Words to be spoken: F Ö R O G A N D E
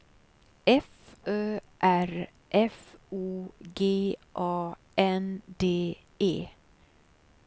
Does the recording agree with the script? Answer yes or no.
no